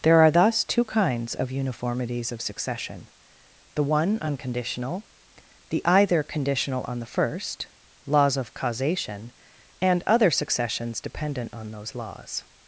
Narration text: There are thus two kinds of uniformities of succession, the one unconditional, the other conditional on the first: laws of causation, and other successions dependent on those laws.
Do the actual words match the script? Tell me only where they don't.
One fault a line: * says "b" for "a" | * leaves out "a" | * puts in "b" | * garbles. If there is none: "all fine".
* says "either" for "other"